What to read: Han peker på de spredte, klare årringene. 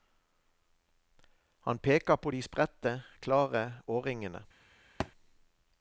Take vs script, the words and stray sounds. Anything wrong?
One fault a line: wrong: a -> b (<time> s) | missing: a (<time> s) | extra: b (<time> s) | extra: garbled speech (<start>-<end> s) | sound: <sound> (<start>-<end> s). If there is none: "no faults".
sound: thud (5.0-5.1 s)